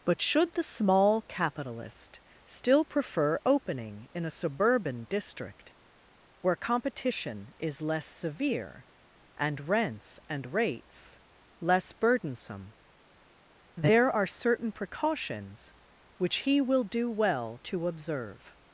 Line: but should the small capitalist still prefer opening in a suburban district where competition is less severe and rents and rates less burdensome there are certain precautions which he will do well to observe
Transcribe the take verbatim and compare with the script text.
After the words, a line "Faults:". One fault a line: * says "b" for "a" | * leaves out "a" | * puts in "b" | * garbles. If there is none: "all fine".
but should the small capitalist still prefer opening in a suburban district where competition is less severe and rents and rates less burdensome there are certain precautions which he will do well to observe
Faults:
all fine